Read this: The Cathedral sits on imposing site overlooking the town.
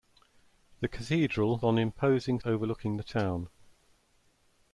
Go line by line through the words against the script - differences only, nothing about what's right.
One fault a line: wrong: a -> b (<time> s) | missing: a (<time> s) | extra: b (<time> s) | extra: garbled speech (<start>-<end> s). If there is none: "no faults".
missing: sits (1.6 s)
missing: site (2.4 s)